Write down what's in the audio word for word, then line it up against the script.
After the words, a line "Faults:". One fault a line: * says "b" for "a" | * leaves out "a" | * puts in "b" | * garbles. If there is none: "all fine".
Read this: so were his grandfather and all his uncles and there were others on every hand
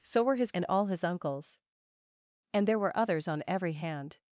so were his and all his uncles and there were others on every hand
Faults:
* leaves out "grandfather"